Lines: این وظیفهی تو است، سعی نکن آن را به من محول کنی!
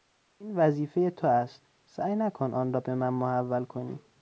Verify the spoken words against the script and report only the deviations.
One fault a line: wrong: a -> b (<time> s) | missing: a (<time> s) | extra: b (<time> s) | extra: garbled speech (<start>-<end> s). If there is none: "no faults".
no faults